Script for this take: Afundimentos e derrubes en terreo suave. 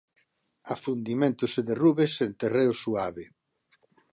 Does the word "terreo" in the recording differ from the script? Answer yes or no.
no